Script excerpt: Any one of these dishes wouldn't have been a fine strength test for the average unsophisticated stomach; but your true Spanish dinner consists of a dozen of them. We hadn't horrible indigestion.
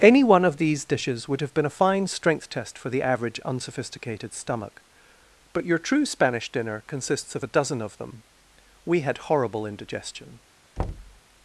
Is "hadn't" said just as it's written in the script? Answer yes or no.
no